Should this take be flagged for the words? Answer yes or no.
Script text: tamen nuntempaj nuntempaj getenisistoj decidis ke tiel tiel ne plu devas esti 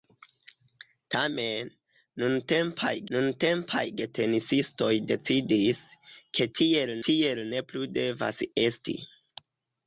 no